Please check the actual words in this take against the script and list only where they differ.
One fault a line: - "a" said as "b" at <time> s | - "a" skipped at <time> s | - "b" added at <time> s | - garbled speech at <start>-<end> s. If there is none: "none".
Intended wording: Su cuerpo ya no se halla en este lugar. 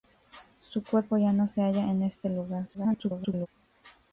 - garbled speech at 2.7-3.5 s